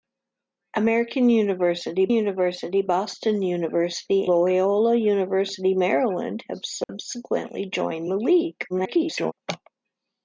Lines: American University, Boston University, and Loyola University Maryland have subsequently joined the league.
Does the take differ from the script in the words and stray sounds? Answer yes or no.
yes